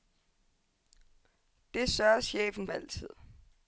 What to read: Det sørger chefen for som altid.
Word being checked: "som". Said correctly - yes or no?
no